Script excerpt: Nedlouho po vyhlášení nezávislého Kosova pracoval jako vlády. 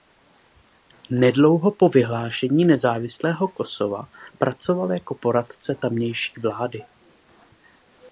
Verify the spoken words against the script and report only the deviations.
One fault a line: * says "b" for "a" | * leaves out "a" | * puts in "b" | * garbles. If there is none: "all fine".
* puts in "poradce tamější"